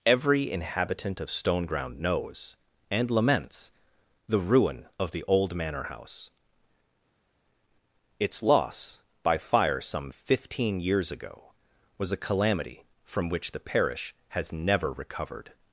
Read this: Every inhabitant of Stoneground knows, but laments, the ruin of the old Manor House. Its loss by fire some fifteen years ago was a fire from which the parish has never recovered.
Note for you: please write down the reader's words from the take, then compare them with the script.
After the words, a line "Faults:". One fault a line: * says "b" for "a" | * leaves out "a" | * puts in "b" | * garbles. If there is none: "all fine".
Every inhabitant of Stoneground knows, and laments, the ruin of the old Manor House. Its loss by fire some fifteen years ago was a calamity from which the parish has never recovered.
Faults:
* says "and" for "but"
* says "calamity" for "fire"